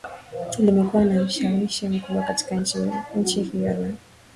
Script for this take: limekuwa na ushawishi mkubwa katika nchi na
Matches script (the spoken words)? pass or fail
fail